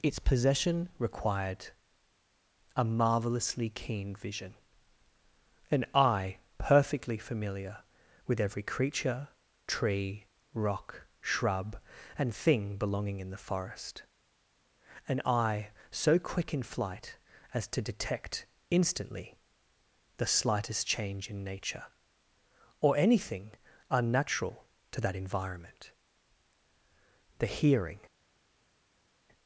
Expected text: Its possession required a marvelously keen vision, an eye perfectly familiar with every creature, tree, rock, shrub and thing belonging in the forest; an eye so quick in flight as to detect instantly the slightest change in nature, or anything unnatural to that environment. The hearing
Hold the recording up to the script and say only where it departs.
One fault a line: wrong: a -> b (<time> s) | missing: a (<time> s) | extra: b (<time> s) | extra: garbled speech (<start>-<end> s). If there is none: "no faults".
no faults